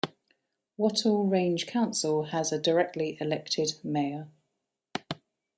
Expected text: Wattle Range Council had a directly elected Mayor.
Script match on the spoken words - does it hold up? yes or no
no